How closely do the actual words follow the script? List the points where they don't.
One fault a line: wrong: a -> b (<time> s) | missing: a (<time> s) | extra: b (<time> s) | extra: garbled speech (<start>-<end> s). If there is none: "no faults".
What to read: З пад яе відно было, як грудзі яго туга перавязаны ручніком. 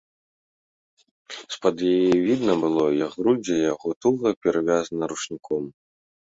no faults